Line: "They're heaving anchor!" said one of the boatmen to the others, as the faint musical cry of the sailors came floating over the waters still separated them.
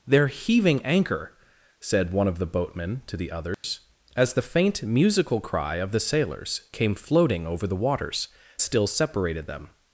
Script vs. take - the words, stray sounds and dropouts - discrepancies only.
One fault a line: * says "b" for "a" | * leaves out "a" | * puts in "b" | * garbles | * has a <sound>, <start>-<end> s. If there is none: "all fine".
* has a dropout, 3.5-3.6 s